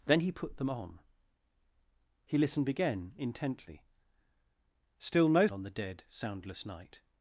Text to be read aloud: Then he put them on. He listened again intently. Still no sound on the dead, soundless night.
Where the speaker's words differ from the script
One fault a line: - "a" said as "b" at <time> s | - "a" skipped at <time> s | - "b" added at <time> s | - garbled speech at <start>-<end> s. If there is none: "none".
- "sound" skipped at 5.5 s